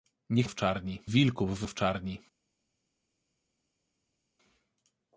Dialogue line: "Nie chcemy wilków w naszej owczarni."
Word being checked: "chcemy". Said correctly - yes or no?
no